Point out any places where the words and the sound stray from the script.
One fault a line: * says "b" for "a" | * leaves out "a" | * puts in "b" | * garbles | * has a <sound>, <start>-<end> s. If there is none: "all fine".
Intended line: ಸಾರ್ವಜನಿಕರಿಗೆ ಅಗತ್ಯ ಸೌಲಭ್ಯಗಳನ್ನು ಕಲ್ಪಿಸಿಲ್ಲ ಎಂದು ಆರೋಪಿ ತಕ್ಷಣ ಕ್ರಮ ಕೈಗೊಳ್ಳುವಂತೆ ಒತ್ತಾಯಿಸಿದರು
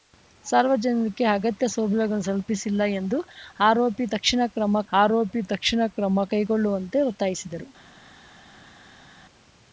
* puts in "ಆರೋಪಿ ತಕ್ಷಣ ಕ್ರಮ"